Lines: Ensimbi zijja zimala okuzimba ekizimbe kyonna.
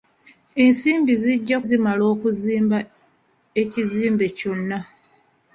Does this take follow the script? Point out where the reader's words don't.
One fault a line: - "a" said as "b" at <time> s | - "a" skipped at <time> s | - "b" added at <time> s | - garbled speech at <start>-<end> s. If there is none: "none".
none